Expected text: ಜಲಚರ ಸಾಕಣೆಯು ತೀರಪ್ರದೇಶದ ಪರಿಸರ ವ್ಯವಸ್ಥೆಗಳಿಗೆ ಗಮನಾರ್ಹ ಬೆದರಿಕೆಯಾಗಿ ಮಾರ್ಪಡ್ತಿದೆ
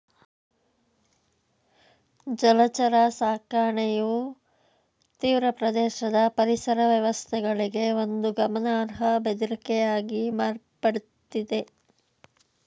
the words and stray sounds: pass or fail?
fail